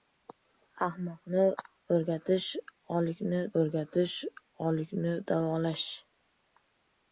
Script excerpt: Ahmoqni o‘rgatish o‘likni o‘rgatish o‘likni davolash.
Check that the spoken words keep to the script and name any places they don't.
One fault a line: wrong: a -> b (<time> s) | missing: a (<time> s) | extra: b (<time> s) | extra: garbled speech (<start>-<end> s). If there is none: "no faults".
no faults